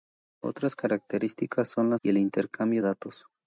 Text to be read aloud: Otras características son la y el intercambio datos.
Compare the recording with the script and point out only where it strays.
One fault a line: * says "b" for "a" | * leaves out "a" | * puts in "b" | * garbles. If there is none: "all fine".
all fine